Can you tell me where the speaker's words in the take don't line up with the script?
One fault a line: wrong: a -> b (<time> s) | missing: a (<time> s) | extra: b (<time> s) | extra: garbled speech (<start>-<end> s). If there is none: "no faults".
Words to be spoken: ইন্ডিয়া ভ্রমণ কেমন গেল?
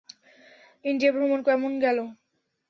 no faults